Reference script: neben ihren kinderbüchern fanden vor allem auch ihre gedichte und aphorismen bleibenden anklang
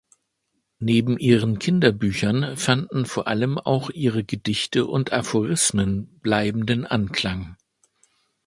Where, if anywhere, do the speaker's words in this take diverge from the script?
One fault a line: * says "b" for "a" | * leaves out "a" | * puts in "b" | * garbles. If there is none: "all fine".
all fine